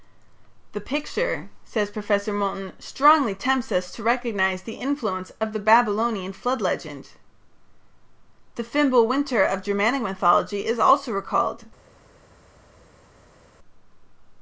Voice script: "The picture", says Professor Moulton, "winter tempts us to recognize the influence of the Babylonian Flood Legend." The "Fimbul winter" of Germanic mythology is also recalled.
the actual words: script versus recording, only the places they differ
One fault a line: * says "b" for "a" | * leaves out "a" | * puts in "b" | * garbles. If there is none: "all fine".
* says "strongly" for "winter"